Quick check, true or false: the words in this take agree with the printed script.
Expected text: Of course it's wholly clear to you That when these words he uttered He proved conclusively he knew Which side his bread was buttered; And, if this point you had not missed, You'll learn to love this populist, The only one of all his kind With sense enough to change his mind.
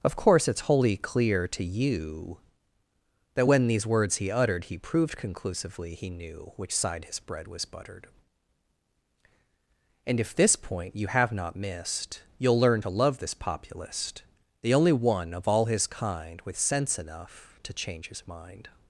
false